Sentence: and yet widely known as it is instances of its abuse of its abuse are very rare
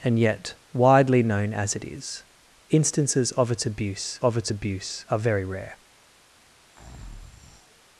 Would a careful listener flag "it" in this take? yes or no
no